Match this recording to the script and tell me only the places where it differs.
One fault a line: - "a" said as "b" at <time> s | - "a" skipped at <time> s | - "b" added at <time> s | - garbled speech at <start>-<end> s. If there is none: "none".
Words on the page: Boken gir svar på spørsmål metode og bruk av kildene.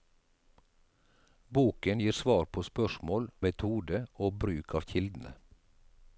none